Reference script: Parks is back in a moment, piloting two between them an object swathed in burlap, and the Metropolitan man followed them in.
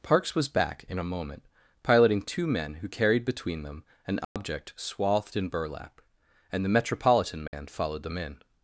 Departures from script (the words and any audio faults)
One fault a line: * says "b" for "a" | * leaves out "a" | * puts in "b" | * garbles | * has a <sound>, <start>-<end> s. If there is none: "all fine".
* says "was" for "is"
* puts in "men who carried"
* has a dropout, 4.2-4.4 s
* has a dropout, 7.5-7.5 s